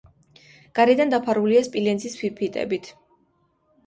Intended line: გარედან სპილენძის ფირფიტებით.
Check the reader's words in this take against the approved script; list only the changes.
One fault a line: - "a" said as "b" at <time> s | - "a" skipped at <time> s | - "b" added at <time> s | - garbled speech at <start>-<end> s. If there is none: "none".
- "დაფარულია" added at 1.1 s